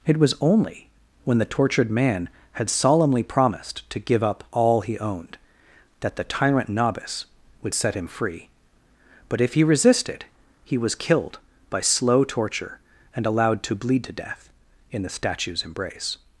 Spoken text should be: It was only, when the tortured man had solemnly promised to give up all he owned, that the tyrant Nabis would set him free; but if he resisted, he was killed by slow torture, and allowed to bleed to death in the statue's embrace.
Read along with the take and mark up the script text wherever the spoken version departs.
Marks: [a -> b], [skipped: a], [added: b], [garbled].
It was only, when the tortured man had solemnly promised to give up all he owned, that the tyrant Nabis would set him free; but if he resisted, he was killed by slow torture, and allowed to bleed to death in the statue's embrace.